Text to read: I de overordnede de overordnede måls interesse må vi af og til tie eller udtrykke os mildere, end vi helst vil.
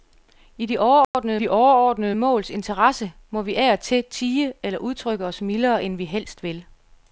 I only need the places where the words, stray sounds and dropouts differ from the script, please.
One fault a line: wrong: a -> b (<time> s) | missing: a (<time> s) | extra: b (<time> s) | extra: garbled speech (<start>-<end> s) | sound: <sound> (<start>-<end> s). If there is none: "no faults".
sound: dropout (1.0-1.1 s)